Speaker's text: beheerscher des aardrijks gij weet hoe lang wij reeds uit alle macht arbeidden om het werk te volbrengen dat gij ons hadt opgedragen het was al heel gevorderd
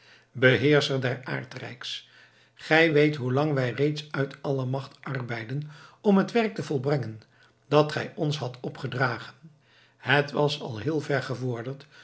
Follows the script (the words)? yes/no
no